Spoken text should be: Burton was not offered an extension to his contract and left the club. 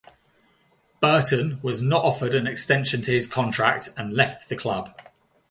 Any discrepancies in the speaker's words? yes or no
no